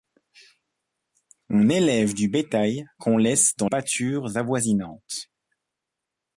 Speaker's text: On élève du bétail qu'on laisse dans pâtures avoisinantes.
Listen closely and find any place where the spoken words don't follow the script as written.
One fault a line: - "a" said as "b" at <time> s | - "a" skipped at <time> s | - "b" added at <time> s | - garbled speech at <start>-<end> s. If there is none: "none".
none